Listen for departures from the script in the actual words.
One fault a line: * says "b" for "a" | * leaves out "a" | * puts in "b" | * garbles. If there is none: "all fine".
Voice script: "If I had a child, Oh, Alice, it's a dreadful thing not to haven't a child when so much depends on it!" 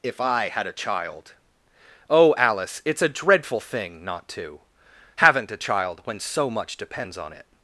all fine